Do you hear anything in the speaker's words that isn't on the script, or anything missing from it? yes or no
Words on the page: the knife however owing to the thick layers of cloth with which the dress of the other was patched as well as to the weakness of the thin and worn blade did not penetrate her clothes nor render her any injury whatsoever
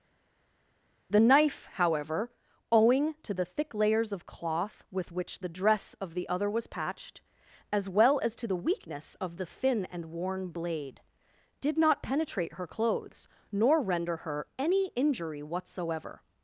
no